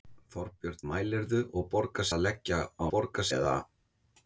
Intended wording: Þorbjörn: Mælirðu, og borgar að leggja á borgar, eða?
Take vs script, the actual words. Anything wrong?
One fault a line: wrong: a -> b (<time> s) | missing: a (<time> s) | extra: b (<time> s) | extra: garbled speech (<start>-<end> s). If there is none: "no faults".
no faults